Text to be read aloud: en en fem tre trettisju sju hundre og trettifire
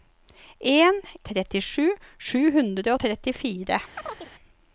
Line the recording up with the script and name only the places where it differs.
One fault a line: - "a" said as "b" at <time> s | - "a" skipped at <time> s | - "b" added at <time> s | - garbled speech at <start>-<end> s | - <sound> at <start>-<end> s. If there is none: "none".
- "en fem tre" skipped at 0.9 s
- chirp at 4.0-4.3 s